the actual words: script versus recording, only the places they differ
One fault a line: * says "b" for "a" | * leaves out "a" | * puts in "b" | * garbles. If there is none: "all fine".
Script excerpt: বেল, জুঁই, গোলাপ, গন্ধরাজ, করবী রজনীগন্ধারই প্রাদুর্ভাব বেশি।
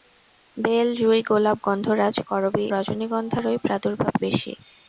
all fine